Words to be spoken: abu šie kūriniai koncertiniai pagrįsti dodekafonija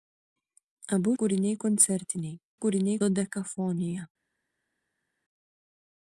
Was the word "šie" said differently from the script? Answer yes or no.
yes